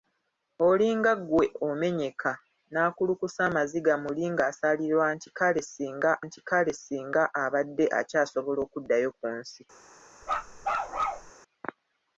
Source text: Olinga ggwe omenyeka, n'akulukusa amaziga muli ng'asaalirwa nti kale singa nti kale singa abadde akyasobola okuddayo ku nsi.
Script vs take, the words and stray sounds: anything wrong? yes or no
yes